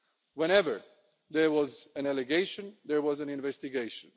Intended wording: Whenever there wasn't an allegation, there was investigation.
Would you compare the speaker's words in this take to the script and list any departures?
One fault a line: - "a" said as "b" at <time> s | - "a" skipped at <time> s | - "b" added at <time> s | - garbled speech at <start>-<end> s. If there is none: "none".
- "wasn't" said as "was" at 1.5 s
- "an" added at 3.2 s